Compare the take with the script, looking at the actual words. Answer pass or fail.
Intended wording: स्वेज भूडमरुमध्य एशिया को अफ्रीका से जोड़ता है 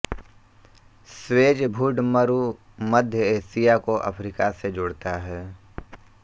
pass